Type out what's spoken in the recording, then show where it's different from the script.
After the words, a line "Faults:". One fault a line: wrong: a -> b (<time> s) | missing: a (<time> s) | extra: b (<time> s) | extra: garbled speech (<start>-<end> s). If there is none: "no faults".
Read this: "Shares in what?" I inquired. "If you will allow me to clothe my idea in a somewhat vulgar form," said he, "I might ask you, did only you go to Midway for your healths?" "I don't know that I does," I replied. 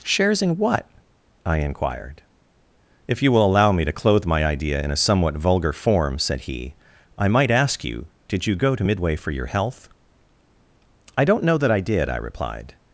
"Shares in what?" I inquired. "If you will allow me to clothe my idea in a somewhat vulgar form," said he, "I might ask you, did you go to Midway for your health?" "I don't know that I did," I replied.
Faults:
missing: only (8.5 s)
wrong: healths -> health (9.5 s)
wrong: does -> did (11.8 s)